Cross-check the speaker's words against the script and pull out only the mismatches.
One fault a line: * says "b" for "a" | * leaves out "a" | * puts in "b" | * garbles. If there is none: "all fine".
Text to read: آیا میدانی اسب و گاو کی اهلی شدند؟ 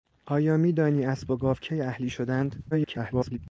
* garbles